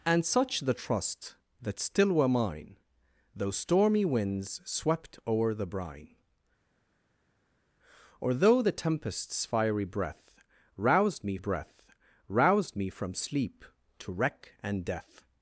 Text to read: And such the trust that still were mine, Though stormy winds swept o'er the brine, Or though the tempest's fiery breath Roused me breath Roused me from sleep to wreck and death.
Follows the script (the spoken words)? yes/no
yes